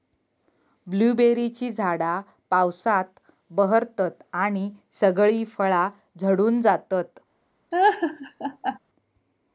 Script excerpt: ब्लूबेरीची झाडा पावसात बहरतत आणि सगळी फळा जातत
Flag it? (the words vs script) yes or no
yes